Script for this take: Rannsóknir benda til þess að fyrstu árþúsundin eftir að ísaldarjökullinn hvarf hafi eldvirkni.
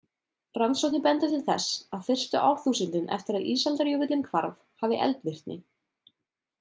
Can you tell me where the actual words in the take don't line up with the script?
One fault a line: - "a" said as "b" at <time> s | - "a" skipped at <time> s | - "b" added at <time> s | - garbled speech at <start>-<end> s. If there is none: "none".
none